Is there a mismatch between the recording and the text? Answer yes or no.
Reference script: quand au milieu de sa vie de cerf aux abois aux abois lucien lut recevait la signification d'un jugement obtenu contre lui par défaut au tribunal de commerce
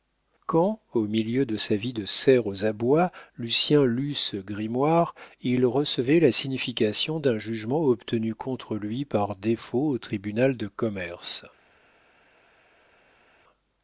yes